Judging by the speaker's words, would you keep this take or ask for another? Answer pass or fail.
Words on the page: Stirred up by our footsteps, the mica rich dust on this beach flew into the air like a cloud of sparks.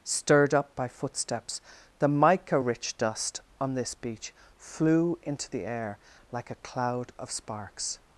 fail